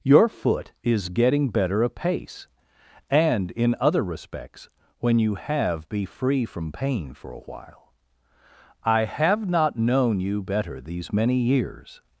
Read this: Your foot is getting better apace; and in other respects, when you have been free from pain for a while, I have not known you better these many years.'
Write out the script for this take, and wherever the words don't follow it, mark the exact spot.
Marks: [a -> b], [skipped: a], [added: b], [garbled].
Your foot is getting better apace; and in other respects, when you have [been -> be] free from pain for a while, I have not known you better these many years.'